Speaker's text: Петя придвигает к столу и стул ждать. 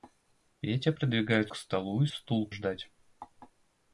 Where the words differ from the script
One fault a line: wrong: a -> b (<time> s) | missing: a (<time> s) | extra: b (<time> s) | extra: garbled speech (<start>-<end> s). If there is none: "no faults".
no faults